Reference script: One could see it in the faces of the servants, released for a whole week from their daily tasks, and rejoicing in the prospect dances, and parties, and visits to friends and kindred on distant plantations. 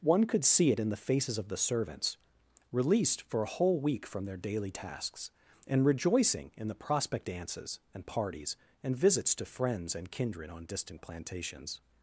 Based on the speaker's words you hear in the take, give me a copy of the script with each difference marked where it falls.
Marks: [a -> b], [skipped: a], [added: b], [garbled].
One could see it in the faces of the servants, released for a whole week from their daily tasks, and rejoicing in the prospect dances, and parties, and visits to friends and kindred on distant plantations.